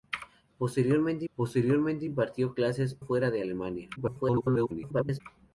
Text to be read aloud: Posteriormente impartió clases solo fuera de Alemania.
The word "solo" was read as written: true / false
false